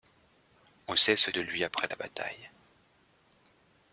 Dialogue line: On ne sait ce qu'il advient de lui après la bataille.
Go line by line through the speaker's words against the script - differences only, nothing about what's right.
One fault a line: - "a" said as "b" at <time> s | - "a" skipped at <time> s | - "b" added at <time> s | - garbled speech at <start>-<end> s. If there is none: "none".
- "ne" skipped at 0.9 s
- "qu'il advient" skipped at 1.3 s